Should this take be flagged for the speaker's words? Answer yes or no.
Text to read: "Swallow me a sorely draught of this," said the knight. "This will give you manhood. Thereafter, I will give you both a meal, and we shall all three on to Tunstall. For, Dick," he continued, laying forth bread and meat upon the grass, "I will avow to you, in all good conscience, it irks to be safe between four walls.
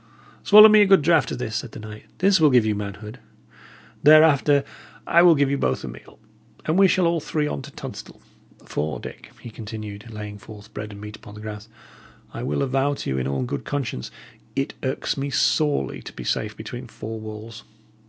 yes